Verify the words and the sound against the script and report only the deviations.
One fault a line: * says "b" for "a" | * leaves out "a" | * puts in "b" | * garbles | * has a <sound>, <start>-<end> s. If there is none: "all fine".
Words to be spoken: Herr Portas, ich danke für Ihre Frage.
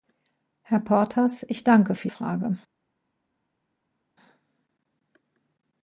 * leaves out "Ihre"